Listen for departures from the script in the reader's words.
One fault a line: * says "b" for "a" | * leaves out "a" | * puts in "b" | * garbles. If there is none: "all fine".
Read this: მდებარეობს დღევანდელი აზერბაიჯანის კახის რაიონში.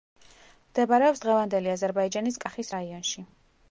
all fine